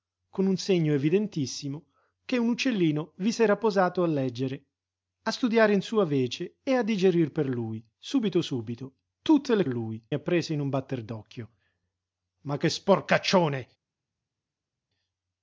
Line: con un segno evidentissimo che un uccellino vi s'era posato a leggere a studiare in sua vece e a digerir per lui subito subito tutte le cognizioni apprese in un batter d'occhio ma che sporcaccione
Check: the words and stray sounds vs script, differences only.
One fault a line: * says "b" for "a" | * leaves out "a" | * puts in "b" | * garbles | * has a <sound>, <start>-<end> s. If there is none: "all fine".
* says "lui" for "cognizioni"